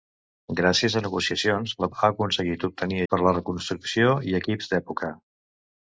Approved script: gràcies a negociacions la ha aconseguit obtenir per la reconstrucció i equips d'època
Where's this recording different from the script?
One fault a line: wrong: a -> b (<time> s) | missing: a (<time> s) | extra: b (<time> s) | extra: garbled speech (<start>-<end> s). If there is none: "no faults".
no faults